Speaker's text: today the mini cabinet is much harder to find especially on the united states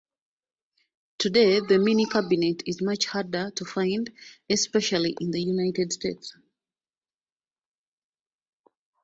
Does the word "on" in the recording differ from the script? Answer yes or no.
yes